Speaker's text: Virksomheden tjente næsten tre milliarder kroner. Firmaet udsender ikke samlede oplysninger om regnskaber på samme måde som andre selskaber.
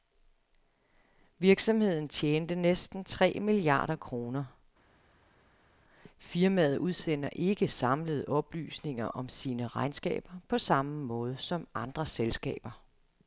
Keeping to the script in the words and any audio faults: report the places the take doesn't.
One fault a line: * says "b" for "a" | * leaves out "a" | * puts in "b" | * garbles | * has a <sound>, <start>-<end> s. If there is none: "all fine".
* puts in "sine"